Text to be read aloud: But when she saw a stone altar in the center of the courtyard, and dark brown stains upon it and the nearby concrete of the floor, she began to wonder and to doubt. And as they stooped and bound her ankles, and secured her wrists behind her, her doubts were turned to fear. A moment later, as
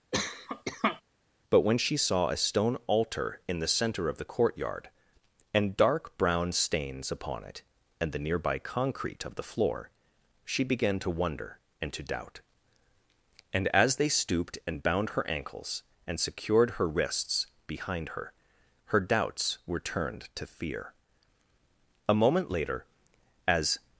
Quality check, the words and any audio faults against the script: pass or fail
fail